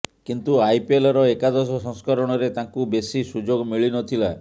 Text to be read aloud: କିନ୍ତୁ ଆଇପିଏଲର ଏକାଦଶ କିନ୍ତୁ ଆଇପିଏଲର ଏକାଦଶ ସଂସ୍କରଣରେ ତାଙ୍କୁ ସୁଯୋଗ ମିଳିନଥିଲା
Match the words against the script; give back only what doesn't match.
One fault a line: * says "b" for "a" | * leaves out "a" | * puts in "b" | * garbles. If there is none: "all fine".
* leaves out "କିନ୍ତୁ ଆଇପିଏଲର ଏକାଦଶ"
* puts in "ବେଶୀ"